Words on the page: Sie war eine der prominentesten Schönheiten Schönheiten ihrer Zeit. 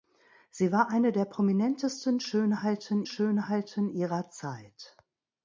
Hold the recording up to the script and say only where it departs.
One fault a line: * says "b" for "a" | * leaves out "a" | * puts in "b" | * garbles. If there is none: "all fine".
all fine